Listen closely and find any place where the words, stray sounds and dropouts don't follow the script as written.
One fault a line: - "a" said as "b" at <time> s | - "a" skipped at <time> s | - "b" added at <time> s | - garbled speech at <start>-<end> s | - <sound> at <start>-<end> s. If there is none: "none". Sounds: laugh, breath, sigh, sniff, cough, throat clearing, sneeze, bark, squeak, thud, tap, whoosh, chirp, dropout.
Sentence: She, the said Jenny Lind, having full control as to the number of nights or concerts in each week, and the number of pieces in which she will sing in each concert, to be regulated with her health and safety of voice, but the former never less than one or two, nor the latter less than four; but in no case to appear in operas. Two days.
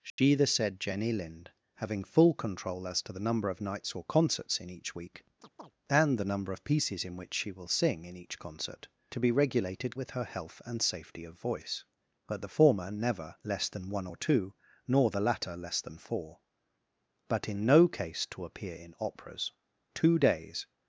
- dropout at 0.1-0.2 s
- chirp at 5.4-5.7 s